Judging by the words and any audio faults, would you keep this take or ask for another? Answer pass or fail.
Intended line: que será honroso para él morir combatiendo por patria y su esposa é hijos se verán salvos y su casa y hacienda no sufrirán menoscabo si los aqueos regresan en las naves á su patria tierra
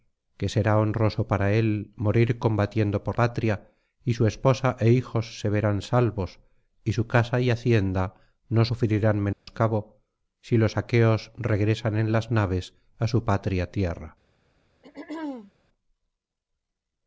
fail